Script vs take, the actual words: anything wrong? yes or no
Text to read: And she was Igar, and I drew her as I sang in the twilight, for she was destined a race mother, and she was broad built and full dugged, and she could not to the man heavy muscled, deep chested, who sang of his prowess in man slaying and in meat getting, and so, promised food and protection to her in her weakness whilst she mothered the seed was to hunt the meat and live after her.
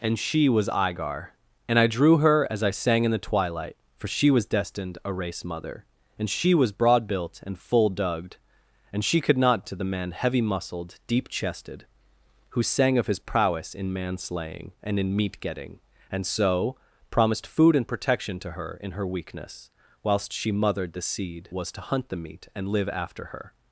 no